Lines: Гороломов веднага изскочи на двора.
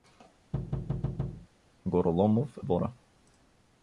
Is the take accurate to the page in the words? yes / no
no